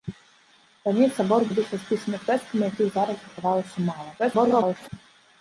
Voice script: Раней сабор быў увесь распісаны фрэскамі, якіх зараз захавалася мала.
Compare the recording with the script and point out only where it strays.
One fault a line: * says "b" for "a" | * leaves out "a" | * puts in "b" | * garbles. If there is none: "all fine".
* leaves out "быў"
* garbles